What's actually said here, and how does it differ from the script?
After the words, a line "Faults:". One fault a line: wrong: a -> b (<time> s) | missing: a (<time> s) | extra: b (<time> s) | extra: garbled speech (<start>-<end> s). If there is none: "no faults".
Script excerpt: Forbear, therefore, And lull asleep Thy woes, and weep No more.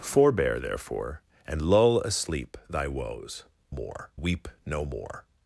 Forbear, therefore, And lull asleep Thy woes, more weep No more.
Faults:
wrong: and -> more (3.7 s)